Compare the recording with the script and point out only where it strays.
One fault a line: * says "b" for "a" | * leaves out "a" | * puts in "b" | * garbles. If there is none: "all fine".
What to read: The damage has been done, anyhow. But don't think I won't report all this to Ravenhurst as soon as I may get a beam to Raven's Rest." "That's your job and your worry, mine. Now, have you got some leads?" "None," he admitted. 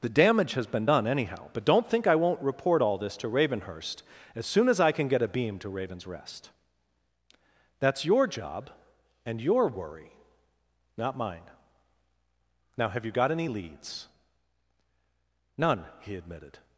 * says "can" for "may"
* puts in "not"
* says "any" for "some"